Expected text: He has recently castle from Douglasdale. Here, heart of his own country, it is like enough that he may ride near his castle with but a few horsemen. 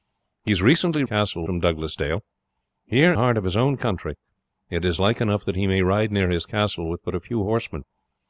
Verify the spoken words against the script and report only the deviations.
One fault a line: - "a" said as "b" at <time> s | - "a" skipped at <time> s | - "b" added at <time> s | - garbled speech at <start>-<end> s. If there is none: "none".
none